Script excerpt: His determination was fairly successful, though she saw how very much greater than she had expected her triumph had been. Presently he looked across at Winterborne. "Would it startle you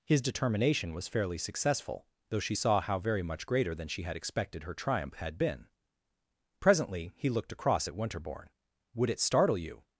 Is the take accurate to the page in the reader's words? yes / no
yes